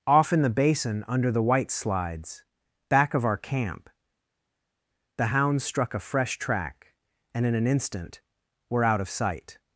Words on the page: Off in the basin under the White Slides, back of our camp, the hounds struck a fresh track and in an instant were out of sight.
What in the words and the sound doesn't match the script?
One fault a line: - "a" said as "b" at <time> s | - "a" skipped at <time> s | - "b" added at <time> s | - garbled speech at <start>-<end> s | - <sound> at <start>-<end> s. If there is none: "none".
none